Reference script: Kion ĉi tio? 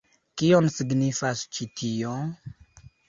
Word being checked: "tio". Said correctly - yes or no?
yes